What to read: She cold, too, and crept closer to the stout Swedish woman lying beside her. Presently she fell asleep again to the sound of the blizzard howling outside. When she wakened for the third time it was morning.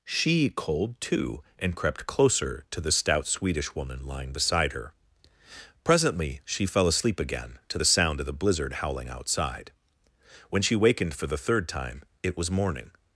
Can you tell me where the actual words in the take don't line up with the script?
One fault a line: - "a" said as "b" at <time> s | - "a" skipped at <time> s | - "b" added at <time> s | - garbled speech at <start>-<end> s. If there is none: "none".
none